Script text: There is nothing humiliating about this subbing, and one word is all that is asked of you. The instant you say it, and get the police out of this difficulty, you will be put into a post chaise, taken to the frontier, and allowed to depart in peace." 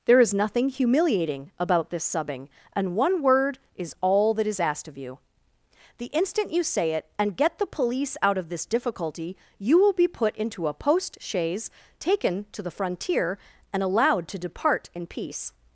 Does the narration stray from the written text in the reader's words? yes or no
no